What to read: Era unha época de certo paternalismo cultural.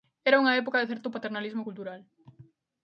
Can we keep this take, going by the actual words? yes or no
yes